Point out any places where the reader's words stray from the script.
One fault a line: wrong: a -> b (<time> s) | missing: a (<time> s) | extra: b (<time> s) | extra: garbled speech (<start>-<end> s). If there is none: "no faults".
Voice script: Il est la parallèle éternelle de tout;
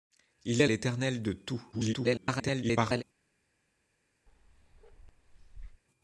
missing: la parallèle (0.7 s)
extra: garbled speech (1.7-3.0 s)